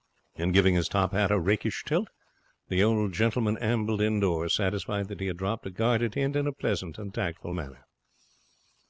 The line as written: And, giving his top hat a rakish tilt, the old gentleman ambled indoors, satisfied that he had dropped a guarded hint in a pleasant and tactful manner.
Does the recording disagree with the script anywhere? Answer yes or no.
no